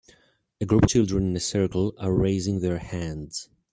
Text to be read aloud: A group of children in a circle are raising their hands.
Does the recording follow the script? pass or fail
fail